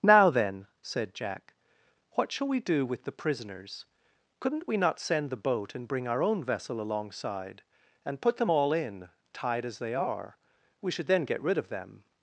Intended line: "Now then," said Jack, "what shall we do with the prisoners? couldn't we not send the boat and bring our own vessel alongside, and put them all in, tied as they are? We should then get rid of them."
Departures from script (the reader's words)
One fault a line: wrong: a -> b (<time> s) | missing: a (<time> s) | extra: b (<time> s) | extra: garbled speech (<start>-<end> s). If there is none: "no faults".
no faults